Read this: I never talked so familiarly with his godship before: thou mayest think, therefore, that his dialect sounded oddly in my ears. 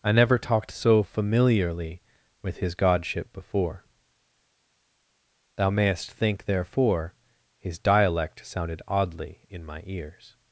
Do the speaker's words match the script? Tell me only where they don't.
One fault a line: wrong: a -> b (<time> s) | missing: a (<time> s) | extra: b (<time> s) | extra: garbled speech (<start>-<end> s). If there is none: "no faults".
missing: that (7.2 s)